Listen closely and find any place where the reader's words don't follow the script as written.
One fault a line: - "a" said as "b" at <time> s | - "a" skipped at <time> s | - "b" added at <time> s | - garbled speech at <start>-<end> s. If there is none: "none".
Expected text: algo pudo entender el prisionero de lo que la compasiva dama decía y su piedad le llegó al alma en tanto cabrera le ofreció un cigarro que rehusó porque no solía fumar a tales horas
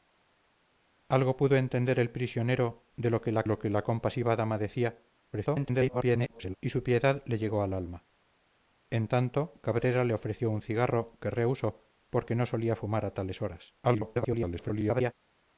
- "lo que la" added at 3.5 s
- garbled speech at 5.3-6.6 s
- garbled speech at 13.8-15.1 s